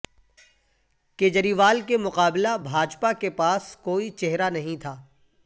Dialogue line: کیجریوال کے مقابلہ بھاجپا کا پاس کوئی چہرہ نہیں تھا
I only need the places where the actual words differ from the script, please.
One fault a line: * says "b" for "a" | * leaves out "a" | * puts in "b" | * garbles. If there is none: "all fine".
* says "کے" for "کا"